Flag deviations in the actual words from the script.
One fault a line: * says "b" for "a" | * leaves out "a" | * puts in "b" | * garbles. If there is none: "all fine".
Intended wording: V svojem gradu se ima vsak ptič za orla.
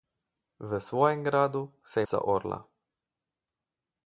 * leaves out "ima vsak ptič"